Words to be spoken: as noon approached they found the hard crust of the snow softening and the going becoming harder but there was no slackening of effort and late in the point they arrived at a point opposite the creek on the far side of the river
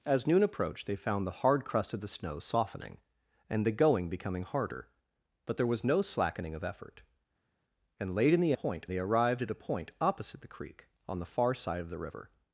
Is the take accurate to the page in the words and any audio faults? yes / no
yes